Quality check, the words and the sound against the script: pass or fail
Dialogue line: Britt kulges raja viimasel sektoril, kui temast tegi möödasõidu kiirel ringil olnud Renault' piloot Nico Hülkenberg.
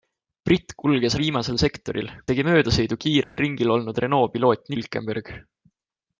fail